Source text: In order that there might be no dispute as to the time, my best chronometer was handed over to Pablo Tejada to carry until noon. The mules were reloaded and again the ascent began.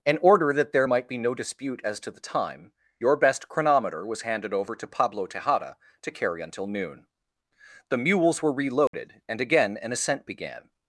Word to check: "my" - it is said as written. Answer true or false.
false